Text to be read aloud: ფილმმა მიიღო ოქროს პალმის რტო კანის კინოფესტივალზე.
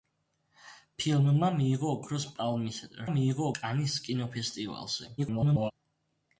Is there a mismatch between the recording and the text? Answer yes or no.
yes